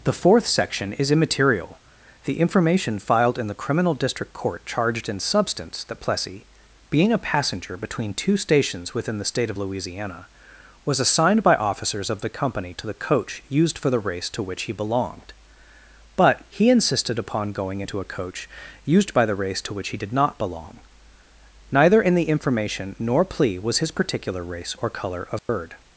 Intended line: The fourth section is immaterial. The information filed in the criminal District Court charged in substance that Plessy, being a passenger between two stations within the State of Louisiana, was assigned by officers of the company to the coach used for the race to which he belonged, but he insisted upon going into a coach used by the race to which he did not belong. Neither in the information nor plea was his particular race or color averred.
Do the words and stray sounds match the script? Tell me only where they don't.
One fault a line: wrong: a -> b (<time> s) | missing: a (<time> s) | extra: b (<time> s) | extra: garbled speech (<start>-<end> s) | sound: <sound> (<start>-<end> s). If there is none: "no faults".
sound: dropout (25.4-25.5 s)